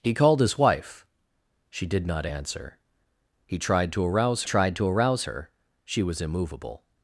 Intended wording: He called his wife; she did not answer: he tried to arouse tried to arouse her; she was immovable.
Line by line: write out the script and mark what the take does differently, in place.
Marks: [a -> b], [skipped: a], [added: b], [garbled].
He called his wife; she did not answer: he tried to arouse tried to arouse her; she was immovable.